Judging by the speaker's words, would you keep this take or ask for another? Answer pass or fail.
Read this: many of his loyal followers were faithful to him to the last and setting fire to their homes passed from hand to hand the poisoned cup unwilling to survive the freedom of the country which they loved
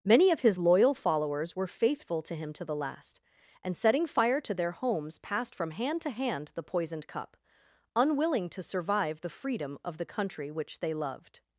pass